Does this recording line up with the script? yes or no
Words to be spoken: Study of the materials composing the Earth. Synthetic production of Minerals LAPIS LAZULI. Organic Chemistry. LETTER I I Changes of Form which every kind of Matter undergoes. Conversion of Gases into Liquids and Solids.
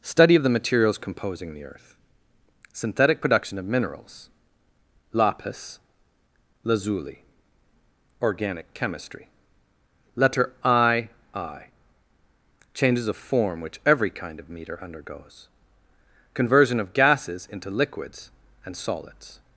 no